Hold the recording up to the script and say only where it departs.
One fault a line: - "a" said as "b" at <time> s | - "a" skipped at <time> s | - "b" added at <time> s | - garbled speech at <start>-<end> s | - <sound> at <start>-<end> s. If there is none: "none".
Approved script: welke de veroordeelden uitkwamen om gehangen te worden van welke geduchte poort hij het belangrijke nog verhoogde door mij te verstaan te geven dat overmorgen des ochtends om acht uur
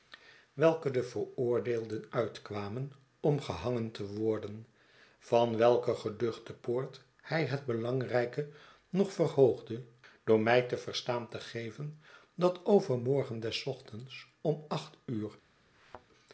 - thud at 15.7-16.1 s